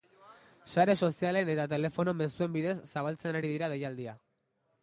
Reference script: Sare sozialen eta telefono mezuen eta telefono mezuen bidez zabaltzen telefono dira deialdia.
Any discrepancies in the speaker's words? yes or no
yes